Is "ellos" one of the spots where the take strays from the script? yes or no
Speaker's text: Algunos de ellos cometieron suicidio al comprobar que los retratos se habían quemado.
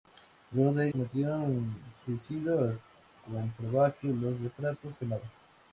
yes